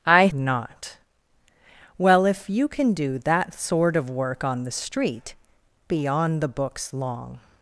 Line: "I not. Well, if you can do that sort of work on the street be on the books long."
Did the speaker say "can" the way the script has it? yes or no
yes